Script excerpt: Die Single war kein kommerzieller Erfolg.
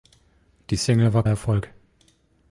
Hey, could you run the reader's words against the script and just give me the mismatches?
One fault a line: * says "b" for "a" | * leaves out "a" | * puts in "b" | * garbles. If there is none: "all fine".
* leaves out "kein kommerzieller"